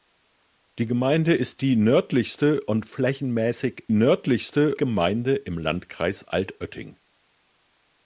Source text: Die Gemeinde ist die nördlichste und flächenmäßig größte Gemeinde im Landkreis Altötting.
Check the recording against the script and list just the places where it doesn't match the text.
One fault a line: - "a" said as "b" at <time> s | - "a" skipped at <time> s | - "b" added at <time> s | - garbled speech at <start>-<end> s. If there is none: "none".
- "größte" said as "nördlichste" at 3.9 s